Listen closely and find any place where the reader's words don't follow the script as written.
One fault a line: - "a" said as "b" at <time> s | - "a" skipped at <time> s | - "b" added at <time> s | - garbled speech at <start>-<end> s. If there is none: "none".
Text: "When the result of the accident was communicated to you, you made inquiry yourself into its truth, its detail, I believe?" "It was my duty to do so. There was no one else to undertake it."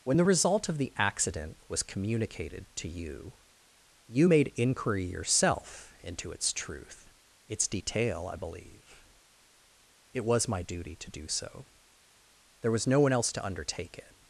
none